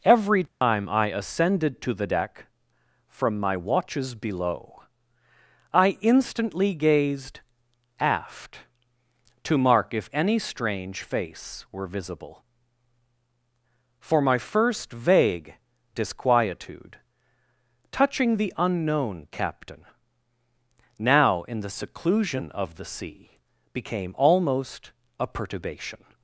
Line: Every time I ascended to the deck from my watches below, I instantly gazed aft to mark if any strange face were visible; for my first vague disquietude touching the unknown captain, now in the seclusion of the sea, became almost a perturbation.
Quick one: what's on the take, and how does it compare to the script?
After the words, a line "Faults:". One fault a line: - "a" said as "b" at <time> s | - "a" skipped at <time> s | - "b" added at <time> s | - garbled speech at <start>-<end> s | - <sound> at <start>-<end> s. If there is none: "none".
Every time I ascended to the deck from my watches below, I instantly gazed aft to mark if any strange face were visible; for my first vague disquietude touching the unknown captain, now in the seclusion of the sea, became almost a perturbation.
Faults:
- dropout at 0.5-0.6 s